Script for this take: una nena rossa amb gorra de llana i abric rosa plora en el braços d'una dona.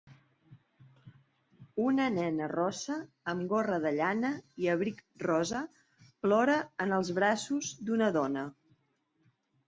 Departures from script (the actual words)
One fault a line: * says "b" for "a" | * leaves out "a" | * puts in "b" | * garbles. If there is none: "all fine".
* says "els" for "el"